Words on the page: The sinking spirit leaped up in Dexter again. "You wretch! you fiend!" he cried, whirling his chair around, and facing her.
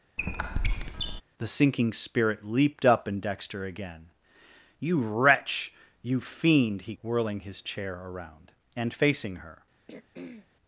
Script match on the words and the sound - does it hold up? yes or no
no